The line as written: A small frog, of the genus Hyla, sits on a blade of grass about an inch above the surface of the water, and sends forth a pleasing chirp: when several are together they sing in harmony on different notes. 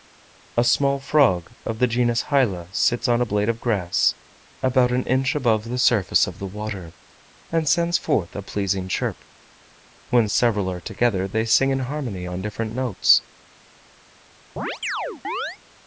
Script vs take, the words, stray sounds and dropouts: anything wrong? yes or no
yes